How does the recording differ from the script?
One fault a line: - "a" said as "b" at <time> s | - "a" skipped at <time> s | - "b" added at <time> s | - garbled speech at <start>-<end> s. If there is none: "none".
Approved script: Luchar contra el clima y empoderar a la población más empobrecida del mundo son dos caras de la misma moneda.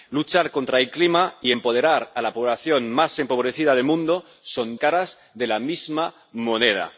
- "dos" skipped at 4.8 s